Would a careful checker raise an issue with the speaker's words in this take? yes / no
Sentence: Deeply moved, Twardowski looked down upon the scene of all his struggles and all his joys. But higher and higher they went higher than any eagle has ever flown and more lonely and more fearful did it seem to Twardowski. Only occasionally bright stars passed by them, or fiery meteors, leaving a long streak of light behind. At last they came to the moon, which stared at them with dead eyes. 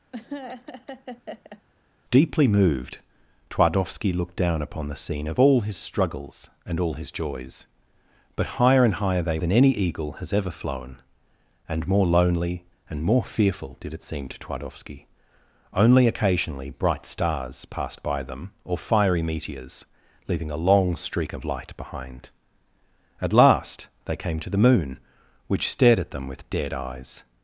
yes